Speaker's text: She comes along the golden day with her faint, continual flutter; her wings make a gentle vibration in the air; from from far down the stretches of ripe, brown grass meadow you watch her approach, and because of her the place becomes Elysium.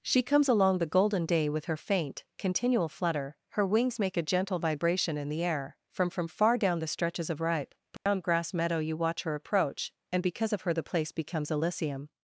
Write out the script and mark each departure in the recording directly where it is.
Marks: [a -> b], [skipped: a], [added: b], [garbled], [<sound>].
She comes along the golden day with her faint, continual flutter; her wings make a gentle vibration in the air; from from far down the stretches of ripe, brown [dropout] grass meadow you watch her approach, and because of her the place becomes Elysium.